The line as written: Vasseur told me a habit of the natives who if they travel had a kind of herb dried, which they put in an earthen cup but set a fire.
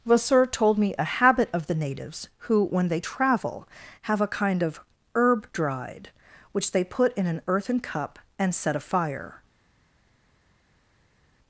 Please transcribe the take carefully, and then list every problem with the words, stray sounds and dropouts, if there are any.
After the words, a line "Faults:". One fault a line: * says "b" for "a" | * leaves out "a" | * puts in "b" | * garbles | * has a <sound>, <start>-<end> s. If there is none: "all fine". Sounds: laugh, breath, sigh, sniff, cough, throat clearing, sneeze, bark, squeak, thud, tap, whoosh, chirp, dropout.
Vasseur told me a habit of the natives who when they travel have a kind of herb dried, which they put in an earthen cup and set a fire.
Faults:
* says "when" for "if"
* says "have" for "had"
* says "and" for "but"